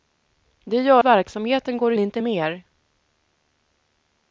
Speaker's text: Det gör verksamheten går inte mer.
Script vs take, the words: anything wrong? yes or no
no